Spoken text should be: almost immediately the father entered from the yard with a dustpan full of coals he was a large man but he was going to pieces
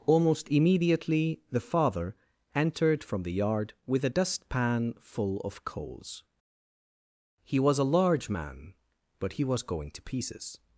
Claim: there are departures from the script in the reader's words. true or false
false